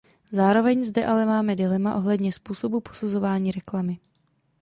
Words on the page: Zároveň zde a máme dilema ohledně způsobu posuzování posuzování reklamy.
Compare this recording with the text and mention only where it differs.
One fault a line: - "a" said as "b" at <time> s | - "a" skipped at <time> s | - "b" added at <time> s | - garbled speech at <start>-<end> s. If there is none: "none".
- "a" said as "ale" at 1.1 s
- "posuzování" skipped at 3.5 s